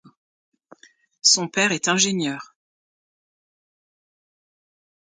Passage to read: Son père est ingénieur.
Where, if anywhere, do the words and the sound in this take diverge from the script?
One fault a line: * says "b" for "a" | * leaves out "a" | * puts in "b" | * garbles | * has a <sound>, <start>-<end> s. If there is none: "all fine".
all fine